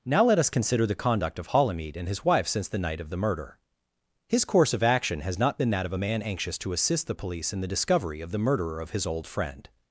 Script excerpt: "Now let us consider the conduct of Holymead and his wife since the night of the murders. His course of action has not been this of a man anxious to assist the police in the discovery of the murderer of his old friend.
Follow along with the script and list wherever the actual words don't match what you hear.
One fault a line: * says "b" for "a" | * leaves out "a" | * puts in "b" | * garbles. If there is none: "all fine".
* says "murder" for "murders"
* says "that" for "this"